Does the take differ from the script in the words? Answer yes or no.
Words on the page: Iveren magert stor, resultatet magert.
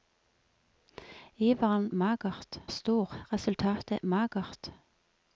no